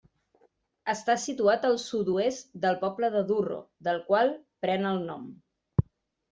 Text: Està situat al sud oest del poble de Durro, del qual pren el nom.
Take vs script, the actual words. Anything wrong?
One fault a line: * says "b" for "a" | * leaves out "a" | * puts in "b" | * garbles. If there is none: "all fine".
all fine